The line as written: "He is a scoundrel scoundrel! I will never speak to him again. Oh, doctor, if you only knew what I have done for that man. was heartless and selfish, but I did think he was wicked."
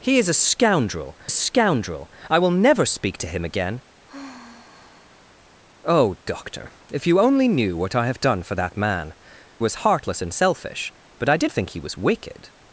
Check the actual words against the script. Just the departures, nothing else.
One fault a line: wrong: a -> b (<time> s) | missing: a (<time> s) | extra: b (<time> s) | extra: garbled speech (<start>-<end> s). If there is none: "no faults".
no faults